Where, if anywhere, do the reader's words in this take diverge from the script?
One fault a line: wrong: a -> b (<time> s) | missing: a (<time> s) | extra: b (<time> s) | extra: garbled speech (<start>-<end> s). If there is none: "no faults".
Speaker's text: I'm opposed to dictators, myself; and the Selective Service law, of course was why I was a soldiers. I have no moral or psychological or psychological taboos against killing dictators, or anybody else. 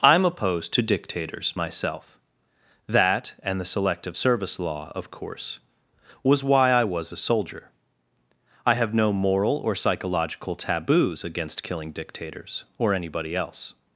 extra: that (2.9 s)
wrong: soldiers -> soldier (7.2 s)
missing: or psychological (10.6 s)